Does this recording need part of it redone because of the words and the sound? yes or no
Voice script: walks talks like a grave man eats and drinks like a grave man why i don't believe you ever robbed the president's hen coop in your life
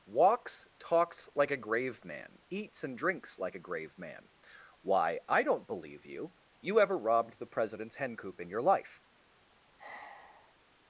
yes